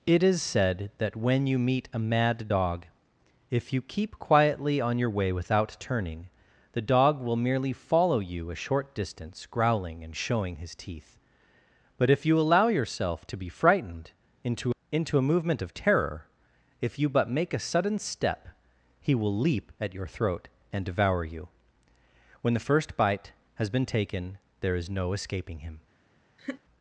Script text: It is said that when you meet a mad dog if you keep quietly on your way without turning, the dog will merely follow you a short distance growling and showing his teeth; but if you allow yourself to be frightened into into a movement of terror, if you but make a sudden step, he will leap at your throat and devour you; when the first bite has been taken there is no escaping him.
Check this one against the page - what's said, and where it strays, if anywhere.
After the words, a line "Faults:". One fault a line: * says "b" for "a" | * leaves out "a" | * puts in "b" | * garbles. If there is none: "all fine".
It is said that when you meet a mad dog if you keep quietly on your way without turning, the dog will merely follow you a short distance growling and showing his teeth; but if you allow yourself to be frightened into into a movement of terror, if you but make a sudden step, he will leap at your throat and devour you; when the first bite has been taken there is no escaping him.
Faults:
all fine